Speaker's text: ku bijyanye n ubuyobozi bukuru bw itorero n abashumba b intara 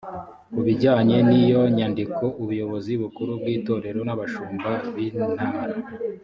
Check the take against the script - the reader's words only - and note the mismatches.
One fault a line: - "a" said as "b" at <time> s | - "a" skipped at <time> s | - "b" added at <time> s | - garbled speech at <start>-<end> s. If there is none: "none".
- "iyo nyandiko" added at 1.4 s